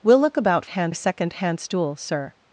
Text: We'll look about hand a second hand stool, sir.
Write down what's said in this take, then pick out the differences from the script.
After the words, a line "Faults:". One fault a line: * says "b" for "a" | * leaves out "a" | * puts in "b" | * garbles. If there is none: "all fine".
We'll look about hand a second hand stool, sir.
Faults:
all fine